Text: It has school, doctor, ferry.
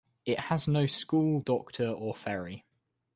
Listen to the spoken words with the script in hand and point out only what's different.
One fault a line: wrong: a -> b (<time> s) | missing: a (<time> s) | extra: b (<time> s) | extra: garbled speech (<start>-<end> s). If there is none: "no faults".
extra: no (0.7 s)
extra: or (1.9 s)